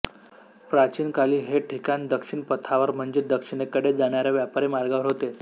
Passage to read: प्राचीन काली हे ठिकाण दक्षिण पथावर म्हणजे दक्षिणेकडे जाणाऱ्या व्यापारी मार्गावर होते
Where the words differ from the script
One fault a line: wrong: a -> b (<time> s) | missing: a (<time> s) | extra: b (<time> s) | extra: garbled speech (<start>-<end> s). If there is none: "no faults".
no faults